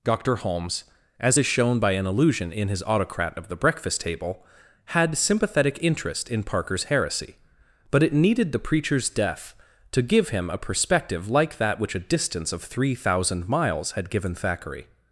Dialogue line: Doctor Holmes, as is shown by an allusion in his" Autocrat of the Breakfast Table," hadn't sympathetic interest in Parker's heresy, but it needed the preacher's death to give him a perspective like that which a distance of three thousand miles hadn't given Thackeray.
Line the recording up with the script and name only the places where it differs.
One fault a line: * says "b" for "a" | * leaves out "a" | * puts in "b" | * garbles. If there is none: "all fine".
* says "had" for "hadn't"
* says "had" for "hadn't"